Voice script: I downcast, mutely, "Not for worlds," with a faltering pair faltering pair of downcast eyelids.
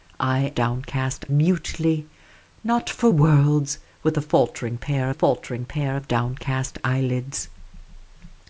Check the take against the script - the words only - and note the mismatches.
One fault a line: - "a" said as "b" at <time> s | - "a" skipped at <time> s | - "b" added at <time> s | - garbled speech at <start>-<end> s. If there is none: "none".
none